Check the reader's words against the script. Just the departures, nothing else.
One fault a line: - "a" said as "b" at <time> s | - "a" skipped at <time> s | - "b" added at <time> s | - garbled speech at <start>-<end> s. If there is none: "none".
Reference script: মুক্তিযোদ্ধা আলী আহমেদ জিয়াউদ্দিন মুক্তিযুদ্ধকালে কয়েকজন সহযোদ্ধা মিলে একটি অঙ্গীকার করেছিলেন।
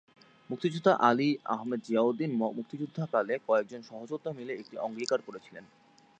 none